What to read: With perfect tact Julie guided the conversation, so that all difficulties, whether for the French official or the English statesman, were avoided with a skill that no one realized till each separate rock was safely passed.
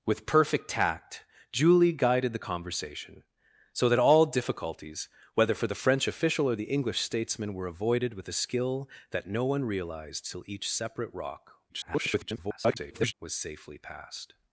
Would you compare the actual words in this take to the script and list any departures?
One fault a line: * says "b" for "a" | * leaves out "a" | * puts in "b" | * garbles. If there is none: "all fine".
* garbles